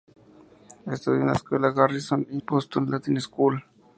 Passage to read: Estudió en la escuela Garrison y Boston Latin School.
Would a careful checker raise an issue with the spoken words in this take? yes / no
no